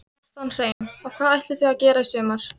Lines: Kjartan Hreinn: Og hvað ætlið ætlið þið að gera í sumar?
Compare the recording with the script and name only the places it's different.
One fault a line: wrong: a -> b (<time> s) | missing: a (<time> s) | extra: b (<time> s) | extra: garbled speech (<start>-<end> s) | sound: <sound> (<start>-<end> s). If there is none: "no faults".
sound: dropout (0.7-0.8 s)
missing: ætlið (1.6 s)